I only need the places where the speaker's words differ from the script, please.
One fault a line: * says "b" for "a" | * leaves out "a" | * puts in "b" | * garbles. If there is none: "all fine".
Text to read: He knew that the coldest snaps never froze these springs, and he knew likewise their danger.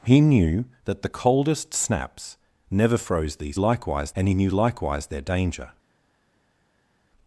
* says "likewise" for "springs"